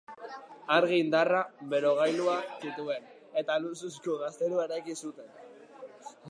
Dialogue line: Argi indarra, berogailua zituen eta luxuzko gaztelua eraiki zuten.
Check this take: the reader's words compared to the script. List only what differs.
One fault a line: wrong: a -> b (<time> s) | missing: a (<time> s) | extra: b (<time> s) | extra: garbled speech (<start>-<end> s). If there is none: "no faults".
no faults